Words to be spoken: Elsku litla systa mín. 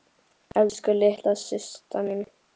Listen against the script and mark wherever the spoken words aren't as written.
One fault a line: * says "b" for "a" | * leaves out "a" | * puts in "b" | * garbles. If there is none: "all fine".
all fine